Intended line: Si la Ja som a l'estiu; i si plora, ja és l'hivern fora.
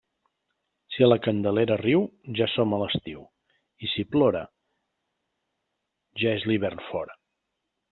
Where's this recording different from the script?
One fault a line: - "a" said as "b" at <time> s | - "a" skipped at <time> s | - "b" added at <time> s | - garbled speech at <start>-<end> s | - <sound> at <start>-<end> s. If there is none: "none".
- "Candelera riu" added at 1.2 s